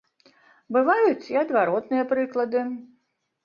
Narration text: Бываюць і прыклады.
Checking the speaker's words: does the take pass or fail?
fail